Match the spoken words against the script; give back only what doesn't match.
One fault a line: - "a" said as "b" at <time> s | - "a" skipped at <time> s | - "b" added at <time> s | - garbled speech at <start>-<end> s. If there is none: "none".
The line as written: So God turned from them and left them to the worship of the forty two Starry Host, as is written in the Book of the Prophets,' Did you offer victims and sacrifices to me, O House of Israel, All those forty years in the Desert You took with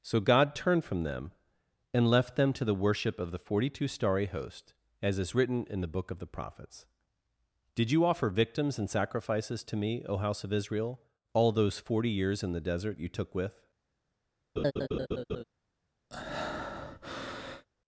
none